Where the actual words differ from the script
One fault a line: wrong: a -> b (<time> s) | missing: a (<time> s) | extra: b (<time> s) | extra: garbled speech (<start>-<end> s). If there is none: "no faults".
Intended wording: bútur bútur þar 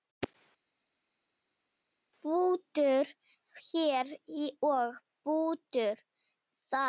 extra: hér og (3.7 s)